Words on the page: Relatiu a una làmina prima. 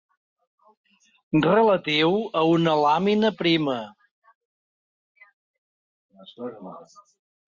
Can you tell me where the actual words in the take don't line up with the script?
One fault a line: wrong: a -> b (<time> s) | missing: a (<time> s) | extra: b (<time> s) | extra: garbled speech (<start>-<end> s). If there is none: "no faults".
no faults